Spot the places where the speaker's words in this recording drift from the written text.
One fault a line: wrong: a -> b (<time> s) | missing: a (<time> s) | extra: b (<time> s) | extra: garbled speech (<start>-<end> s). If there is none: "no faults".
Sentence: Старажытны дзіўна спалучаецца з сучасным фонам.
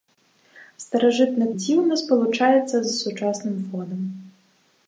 no faults